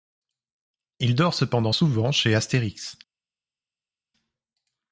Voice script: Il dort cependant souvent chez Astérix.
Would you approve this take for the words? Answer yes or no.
yes